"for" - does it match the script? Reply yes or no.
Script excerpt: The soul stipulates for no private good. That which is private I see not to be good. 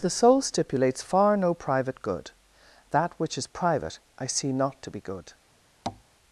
no